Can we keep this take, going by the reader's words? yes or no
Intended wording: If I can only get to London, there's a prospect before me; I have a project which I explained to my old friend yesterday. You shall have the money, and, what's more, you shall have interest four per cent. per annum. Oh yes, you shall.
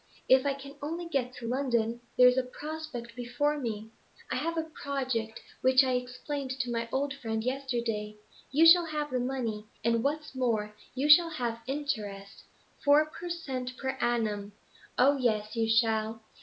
yes